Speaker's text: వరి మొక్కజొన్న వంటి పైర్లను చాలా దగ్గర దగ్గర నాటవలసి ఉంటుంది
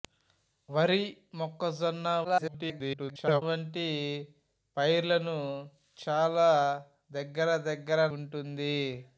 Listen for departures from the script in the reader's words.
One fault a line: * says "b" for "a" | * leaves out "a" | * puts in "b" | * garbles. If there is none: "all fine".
* garbles
* leaves out "నాటవలసి"